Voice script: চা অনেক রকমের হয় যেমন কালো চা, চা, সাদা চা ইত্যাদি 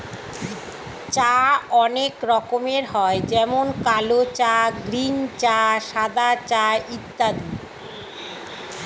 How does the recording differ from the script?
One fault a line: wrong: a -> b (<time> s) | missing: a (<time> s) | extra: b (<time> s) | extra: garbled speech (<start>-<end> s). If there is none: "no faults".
extra: গ্রীন (4.8 s)